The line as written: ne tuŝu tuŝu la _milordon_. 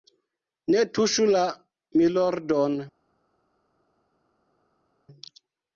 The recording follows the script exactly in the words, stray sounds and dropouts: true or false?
false